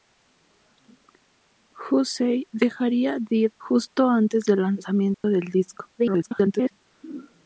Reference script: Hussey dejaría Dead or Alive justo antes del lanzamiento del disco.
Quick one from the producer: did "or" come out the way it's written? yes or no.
no